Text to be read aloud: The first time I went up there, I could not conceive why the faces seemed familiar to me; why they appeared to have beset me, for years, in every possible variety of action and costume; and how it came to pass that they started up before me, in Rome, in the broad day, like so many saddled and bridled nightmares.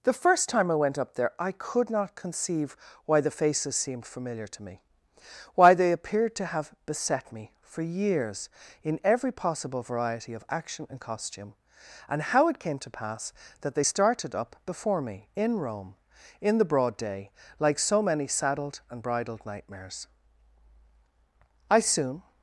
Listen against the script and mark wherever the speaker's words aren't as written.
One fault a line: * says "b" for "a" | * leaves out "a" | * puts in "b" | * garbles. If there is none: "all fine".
* puts in "I soon"